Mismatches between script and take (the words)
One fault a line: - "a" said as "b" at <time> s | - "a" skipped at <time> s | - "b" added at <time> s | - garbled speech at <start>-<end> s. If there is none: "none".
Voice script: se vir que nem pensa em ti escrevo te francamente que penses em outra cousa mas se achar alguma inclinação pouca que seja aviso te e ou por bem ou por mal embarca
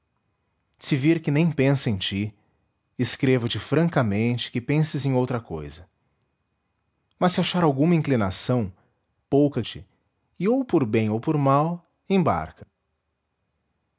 - "que seja aviso" skipped at 9.6 s